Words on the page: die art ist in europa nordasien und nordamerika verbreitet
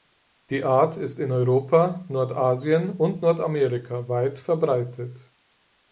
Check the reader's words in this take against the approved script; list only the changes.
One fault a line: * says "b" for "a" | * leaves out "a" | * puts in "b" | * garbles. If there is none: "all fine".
* puts in "weit"